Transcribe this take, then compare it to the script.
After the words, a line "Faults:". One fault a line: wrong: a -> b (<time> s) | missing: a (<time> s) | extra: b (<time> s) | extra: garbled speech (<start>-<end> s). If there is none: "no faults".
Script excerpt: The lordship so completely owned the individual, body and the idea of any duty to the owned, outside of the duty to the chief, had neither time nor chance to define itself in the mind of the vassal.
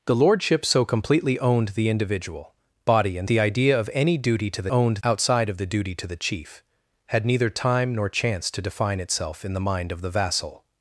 The lordship so completely owned the individual, body and the idea of any duty to the owned, outside of the duty to the chief, had neither time nor chance to define itself in the mind of the vassal.
Faults:
no faults